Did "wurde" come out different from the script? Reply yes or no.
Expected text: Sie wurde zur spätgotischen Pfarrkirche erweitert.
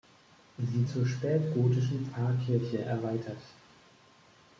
yes